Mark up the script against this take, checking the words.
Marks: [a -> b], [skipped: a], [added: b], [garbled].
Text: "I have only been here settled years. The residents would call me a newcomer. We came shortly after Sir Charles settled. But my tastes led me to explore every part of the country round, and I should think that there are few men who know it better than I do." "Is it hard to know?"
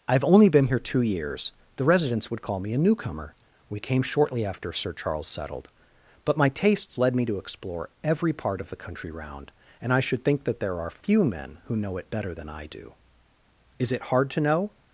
"I have only been here [settled -> two] years. The residents would call me a newcomer. We came shortly after Sir Charles settled. But my tastes led me to explore every part of the country round, and I should think that there are few men who know it better than I do." "Is it hard to know?"